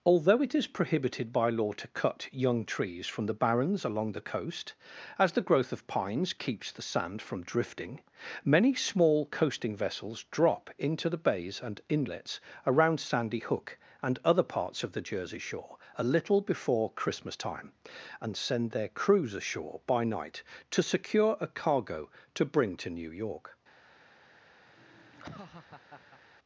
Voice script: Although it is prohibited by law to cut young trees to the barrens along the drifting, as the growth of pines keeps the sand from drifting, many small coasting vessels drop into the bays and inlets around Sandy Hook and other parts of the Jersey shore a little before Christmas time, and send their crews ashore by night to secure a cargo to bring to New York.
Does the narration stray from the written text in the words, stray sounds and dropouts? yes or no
yes